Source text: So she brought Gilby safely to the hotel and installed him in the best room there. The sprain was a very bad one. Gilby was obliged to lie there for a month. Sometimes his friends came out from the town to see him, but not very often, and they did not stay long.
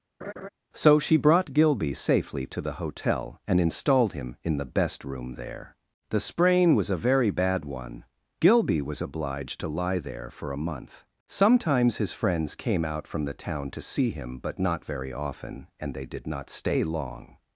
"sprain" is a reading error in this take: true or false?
false